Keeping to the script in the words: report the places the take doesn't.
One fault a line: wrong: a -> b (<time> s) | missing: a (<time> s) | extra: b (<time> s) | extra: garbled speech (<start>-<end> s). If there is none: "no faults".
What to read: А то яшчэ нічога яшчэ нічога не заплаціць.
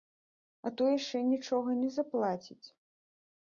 missing: яшчэ нічога (1.8 s)